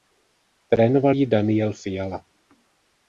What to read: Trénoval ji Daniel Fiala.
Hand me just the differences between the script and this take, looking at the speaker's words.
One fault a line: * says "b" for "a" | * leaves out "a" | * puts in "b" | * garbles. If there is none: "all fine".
all fine